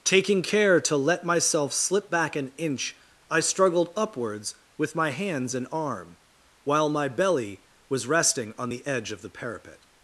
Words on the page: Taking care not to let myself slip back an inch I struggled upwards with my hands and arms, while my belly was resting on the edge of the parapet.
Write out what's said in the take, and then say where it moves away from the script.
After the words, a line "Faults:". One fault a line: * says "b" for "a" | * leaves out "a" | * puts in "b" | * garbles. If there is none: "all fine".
Taking care to let myself slip back an inch I struggled upwards with my hands and arm, while my belly was resting on the edge of the parapet.
Faults:
* leaves out "not"
* says "arm" for "arms"